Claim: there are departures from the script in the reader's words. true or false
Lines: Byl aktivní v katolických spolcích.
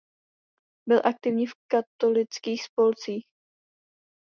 false